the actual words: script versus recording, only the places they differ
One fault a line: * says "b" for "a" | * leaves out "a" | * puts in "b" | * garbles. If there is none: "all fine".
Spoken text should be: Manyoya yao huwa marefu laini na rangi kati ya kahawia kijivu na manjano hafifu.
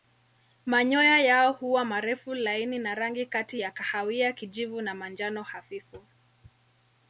all fine